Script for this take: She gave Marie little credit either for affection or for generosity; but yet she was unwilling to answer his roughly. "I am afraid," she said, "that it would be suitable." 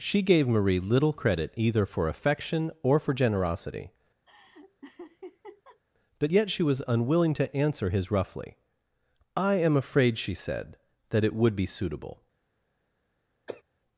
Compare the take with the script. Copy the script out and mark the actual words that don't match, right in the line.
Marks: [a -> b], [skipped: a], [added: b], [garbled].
She gave Marie little credit either for affection or for generosity; but yet she was unwilling to answer his roughly. "I am afraid," she said, "that it would be suitable."